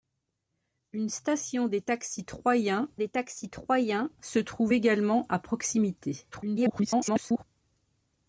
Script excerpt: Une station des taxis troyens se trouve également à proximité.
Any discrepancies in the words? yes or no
yes